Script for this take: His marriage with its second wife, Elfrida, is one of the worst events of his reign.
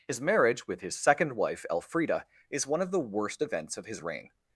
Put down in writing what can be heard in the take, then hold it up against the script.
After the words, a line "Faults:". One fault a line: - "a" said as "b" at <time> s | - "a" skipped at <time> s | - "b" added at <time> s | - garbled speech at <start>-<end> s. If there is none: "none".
His marriage with his second wife, Elfrida, is one of the worst events of his reign.
Faults:
- "its" said as "his" at 0.8 s